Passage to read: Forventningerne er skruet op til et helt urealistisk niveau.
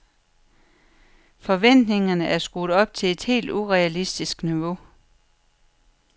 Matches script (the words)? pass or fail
pass